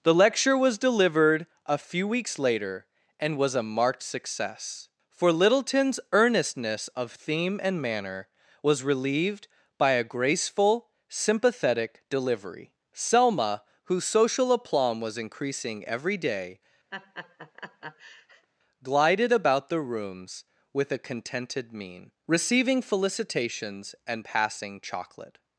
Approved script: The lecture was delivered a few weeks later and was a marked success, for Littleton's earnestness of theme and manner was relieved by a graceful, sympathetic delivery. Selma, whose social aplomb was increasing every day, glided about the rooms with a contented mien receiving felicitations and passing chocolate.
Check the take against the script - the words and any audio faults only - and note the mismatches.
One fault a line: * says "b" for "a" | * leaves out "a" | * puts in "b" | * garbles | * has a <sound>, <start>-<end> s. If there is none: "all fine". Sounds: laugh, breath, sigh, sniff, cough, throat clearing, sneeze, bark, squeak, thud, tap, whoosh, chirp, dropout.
* has a laugh, 16.9-18.5 s